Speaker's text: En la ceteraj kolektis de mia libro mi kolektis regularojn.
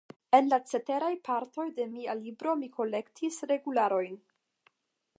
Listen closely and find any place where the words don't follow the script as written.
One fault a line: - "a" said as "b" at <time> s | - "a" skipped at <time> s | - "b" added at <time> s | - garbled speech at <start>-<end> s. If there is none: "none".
- "kolektis" said as "partoj" at 1.3 s